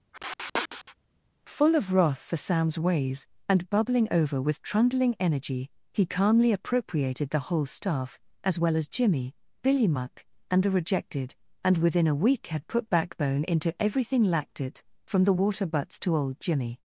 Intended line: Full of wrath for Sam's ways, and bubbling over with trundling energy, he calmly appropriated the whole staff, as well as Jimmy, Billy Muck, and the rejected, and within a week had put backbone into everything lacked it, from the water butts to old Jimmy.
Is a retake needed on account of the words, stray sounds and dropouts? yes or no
yes